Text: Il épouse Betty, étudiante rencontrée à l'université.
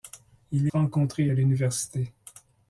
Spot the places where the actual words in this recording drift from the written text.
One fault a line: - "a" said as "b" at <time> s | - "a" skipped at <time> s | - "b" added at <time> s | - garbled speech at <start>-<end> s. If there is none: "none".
- "épouse Betty étudiante" skipped at 0.7 s